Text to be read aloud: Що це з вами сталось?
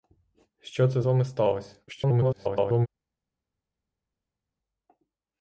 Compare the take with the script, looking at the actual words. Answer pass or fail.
fail